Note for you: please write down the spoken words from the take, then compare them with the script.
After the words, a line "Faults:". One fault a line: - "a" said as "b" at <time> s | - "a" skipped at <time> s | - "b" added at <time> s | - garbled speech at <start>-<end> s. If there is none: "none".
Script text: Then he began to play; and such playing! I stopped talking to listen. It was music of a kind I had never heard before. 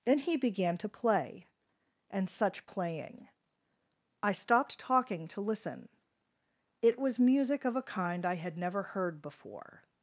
Then he began to play; and such playing! I stopped talking to listen. It was music of a kind I had never heard before.
Faults:
none